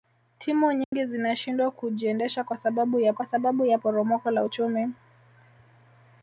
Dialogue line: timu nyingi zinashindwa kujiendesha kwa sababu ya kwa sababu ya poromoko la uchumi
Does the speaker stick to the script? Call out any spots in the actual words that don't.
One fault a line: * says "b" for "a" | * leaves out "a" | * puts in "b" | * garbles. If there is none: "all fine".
all fine